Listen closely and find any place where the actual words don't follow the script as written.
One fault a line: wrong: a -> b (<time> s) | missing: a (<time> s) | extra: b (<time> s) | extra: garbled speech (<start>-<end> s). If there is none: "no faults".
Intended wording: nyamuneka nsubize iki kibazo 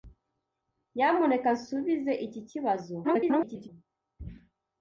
extra: garbled speech (3.0-3.7 s)